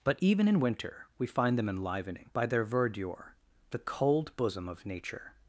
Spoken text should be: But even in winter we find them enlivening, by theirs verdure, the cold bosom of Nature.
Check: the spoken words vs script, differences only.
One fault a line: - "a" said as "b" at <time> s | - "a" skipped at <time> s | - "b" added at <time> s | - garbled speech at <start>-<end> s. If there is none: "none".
- "theirs" said as "their" at 2.5 s